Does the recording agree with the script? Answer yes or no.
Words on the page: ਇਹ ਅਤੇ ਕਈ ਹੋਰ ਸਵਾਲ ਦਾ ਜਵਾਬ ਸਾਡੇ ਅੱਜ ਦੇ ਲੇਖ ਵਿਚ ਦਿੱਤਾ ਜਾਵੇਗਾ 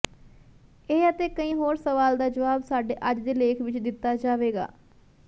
yes